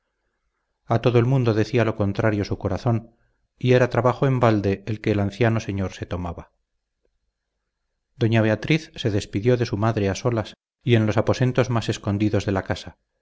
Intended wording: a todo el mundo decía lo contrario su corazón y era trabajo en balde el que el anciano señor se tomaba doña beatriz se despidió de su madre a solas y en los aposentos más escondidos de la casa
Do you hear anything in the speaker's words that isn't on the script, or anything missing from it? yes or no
no